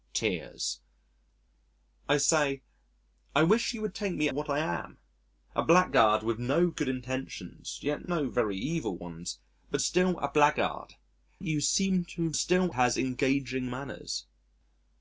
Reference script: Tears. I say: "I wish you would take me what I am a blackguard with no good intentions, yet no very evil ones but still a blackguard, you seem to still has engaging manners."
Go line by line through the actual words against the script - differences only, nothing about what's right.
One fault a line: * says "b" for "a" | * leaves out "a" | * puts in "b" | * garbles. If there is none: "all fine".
all fine